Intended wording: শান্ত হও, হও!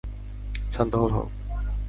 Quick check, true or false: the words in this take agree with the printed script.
true